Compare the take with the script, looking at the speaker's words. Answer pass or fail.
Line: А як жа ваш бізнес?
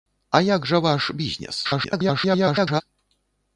fail